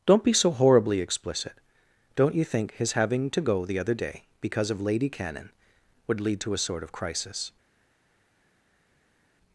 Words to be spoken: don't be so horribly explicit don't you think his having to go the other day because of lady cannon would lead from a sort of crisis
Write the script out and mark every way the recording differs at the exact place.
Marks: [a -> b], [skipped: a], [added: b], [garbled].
don't be so horribly explicit don't you think his having to go the other day because of lady cannon would lead [from -> to] a sort of crisis